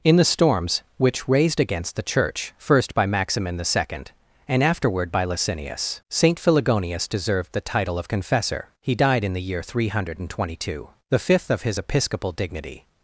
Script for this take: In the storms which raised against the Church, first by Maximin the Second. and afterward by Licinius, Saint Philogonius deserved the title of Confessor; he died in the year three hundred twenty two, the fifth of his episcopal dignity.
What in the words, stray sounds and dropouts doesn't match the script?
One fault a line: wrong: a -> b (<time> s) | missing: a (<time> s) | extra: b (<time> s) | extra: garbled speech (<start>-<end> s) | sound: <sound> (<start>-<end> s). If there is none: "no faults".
no faults